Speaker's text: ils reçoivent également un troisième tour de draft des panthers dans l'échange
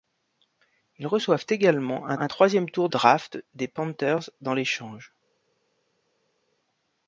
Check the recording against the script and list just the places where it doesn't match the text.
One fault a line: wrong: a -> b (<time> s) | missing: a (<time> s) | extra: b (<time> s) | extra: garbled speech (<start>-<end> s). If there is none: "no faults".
extra: un (2.2 s)
missing: de (2.9 s)